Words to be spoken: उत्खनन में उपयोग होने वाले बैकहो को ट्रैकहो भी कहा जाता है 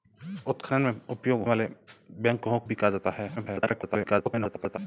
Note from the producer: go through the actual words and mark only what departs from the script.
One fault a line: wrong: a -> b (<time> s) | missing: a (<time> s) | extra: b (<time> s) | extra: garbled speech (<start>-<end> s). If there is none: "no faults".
missing: होने (1.4 s)
missing: को ट्रैकहो (2.6 s)
extra: garbled speech (3.4-4.8 s)